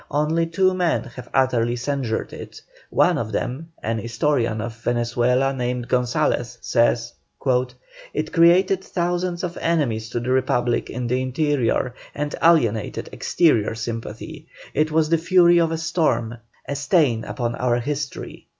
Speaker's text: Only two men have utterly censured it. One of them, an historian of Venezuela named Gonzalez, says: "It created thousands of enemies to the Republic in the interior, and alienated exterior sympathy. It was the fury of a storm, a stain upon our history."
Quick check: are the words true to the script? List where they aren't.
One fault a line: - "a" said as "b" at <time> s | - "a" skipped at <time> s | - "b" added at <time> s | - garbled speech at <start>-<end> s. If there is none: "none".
none